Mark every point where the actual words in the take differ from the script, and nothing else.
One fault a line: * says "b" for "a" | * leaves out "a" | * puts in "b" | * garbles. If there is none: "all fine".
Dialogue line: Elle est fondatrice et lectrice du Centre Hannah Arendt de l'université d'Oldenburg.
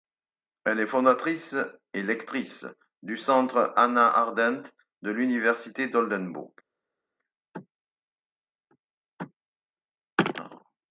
all fine